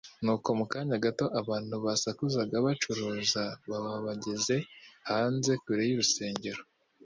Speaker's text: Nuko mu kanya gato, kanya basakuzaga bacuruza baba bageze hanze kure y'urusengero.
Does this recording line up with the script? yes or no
no